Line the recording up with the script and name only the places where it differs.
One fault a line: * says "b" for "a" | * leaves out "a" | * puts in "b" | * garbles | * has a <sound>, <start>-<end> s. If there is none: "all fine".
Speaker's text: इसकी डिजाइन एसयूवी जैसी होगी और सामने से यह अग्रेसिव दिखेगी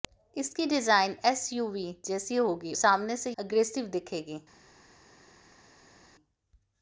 * leaves out "और"
* leaves out "यह"